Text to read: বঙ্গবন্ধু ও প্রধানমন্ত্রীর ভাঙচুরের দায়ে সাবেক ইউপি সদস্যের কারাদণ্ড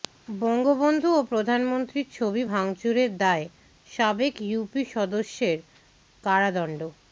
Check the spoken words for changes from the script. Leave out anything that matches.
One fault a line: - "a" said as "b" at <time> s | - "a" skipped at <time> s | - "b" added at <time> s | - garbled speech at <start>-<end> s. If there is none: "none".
- "ছবি" added at 2.1 s